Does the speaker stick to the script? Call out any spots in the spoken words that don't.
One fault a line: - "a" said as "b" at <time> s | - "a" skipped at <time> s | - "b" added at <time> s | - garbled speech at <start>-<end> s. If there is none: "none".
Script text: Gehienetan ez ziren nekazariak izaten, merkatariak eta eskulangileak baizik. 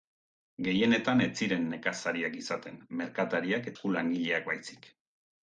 - "eta" skipped at 3.7 s